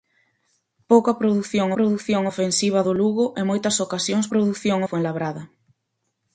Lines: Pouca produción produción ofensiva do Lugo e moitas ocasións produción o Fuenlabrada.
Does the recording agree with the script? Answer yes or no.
yes